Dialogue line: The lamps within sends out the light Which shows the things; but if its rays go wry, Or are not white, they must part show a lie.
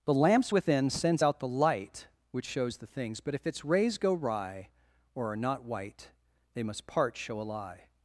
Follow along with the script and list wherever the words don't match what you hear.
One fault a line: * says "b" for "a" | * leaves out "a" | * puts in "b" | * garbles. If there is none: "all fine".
all fine